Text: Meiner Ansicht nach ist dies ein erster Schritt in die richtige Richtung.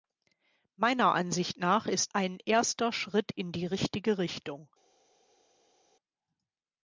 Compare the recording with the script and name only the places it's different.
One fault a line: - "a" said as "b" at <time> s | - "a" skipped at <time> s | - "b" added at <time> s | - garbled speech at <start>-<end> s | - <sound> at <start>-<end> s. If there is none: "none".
- "dies" skipped at 2.1 s